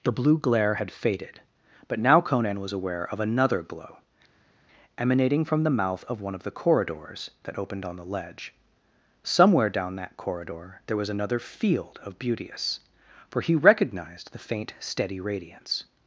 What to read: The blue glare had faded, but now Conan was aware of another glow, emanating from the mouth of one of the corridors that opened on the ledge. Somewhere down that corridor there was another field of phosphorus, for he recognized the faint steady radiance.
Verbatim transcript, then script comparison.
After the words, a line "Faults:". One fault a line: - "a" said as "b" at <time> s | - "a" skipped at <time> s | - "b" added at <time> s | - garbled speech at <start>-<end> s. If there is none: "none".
The blue glare had faded, but now Conan was aware of another glow, emanating from the mouth of one of the corridors that opened on the ledge. Somewhere down that corridor there was another field of beauteous, for he recognized the faint steady radiance.
Faults:
- "phosphorus" said as "beauteous" at 12.2 s